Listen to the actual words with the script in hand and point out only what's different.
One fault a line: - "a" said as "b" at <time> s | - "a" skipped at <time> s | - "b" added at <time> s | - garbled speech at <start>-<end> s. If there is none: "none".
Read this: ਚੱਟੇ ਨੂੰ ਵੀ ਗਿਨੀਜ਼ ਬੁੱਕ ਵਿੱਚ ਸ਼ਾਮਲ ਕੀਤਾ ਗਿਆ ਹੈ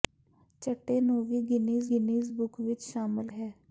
- "ਗਿਨੀਜ਼" added at 1.9 s
- "ਕੀਤਾ ਗਿਆ" skipped at 3.3 s